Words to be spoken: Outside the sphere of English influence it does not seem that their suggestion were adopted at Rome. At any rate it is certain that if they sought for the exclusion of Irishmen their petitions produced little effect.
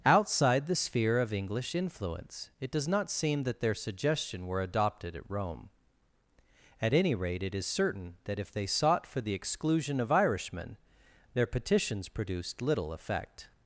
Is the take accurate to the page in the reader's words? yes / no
yes